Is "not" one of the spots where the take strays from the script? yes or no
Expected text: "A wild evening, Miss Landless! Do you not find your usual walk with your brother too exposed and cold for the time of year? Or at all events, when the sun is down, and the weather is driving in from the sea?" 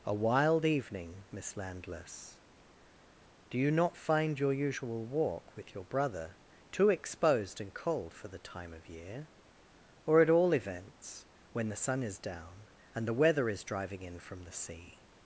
no